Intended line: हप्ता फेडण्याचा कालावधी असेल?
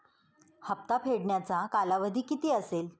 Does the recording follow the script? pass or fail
fail